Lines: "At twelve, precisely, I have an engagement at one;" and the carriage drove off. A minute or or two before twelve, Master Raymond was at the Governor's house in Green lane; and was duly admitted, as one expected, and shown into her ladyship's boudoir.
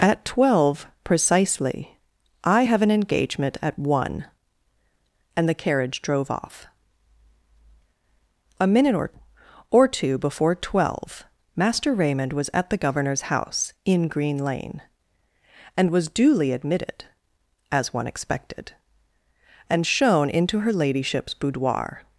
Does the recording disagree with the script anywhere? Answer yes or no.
no